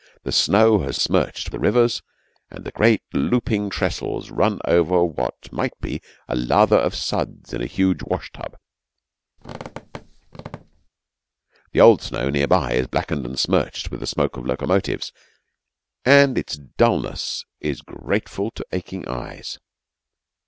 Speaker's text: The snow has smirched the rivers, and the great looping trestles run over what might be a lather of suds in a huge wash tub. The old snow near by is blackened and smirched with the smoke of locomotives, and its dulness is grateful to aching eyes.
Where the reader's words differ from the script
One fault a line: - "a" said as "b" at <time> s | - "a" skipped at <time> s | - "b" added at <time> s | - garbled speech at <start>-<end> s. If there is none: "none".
none